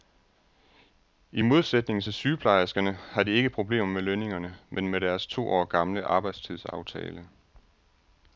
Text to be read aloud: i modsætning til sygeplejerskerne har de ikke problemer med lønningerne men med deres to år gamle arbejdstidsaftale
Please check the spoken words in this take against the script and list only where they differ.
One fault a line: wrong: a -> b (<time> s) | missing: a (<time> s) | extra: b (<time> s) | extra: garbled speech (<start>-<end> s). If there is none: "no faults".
no faults